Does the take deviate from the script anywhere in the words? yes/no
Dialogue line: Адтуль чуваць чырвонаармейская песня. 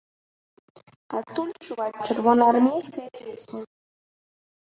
no